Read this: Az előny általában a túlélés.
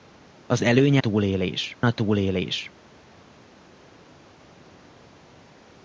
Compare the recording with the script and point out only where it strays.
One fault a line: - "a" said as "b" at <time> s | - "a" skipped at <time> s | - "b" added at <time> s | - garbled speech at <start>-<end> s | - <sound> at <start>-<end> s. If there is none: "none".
- "általában" said as "túlélés" at 1.0 s